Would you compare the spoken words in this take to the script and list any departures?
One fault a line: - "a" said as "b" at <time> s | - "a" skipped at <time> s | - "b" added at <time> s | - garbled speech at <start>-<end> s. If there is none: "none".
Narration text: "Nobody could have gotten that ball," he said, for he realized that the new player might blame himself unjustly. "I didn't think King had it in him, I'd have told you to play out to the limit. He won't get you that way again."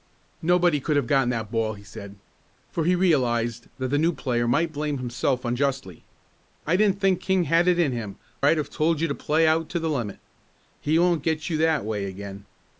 none